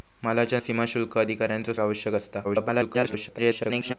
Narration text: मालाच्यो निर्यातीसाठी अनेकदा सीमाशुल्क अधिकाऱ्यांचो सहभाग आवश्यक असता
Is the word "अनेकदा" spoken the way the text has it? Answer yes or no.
no